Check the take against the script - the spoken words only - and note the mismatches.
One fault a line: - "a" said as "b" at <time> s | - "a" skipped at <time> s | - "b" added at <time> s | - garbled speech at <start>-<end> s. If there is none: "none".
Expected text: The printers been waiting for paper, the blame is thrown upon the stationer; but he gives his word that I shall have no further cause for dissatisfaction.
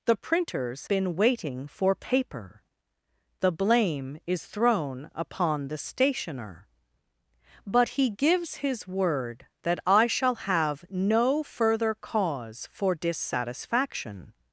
none